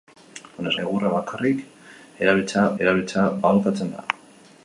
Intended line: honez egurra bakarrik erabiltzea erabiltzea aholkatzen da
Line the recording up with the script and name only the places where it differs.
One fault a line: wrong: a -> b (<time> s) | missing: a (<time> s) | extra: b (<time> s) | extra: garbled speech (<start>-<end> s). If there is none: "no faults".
no faults